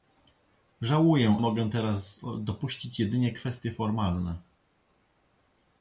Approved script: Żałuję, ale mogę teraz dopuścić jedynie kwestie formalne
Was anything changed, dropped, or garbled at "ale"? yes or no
yes